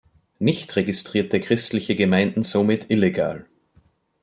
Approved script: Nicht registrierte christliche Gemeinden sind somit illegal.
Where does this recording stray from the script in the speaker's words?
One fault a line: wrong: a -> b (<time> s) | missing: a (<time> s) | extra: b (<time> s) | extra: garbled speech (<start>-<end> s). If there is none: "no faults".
missing: sind (2.4 s)